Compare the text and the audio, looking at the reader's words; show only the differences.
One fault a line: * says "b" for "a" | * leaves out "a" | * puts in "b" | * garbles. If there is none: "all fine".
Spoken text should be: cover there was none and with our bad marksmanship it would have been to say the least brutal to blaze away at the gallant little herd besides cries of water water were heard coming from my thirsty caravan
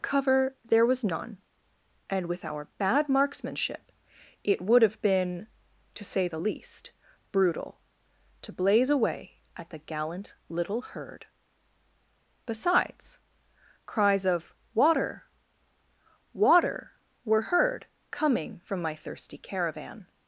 all fine